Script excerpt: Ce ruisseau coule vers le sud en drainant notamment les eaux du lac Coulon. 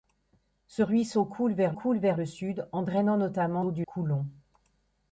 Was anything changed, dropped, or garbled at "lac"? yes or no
yes